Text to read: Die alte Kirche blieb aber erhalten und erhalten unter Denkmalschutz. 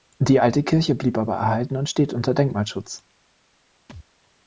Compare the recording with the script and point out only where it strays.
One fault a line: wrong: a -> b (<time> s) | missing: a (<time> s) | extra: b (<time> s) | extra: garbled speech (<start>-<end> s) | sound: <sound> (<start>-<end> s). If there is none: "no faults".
wrong: erhalten -> steht (1.9 s)
sound: thud (3.9-4.1 s)